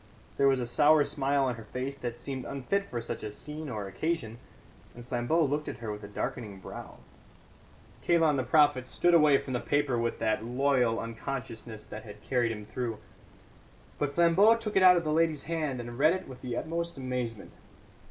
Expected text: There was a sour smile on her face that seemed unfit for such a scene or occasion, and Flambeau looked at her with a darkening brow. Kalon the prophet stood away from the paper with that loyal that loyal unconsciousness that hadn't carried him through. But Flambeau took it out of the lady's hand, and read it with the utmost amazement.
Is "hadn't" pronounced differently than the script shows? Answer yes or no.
yes